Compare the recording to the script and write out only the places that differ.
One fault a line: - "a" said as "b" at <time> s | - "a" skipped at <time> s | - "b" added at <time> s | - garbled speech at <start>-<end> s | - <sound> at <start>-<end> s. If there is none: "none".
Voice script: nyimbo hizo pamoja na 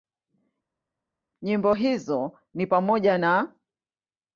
- "ni" added at 2.5 s